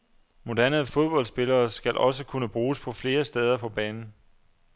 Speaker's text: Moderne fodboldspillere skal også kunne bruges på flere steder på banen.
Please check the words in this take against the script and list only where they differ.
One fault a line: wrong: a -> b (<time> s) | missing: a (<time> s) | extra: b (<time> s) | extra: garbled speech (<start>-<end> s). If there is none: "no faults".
no faults